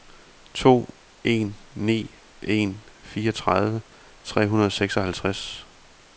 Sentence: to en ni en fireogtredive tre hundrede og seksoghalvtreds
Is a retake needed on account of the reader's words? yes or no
no